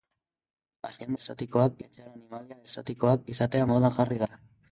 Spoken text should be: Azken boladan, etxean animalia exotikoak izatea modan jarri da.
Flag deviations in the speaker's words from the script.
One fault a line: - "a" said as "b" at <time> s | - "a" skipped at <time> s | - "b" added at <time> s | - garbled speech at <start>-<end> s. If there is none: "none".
- "boladan" said as "exotikoak" at 1.1 s